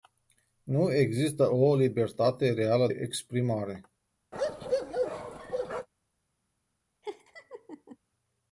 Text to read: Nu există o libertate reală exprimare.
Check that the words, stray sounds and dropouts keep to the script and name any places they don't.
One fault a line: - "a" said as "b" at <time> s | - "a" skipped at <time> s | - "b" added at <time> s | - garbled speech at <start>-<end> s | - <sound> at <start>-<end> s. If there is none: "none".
- bark at 4.3-5.9 s
- laugh at 7.0-8.0 s